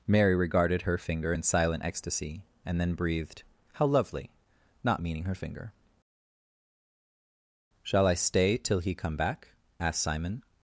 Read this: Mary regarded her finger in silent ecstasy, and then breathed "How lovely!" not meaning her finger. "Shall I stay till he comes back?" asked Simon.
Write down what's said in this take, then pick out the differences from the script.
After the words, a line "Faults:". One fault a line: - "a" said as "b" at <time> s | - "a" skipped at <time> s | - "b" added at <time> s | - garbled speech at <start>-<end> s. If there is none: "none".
Mary regarded her finger in silent ecstasy, and then breathed "How lovely!" not meaning her finger. "Shall I stay till he come back?" asked Simon.
Faults:
- "comes" said as "come" at 8.9 s